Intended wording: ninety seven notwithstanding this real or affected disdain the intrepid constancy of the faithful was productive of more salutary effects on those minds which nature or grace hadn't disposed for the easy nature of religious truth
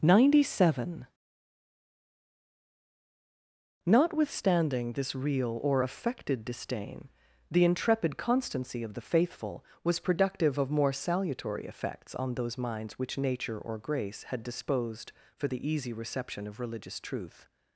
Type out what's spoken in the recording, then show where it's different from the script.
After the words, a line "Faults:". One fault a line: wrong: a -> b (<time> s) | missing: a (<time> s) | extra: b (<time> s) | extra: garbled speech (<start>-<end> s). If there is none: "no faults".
ninety seven notwithstanding this real or affected disdain the intrepid constancy of the faithful was productive of more salutary effects on those minds which nature or grace had disposed for the easy reception of religious truth
Faults:
wrong: hadn't -> had (14.2 s)
wrong: nature -> reception (15.9 s)